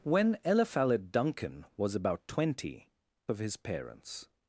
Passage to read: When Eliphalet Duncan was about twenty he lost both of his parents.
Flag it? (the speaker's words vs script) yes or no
yes